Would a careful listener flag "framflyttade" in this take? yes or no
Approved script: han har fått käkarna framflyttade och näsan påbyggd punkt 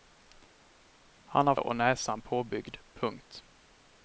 yes